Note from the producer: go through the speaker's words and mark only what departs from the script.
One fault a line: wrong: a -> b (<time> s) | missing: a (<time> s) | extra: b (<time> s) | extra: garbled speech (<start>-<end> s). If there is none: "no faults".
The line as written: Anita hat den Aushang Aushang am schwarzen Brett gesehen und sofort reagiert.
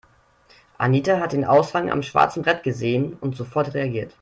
missing: Aushang (1.9 s)